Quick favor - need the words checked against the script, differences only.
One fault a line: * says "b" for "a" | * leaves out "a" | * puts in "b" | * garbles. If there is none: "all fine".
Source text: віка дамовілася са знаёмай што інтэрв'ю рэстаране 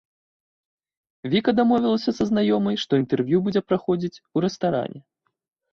* puts in "будзе праходзіць у"